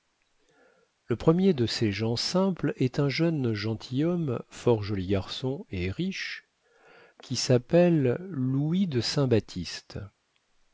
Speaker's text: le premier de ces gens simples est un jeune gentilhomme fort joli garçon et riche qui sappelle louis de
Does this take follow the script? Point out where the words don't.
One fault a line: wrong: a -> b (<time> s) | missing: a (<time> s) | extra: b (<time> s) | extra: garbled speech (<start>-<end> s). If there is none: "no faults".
no faults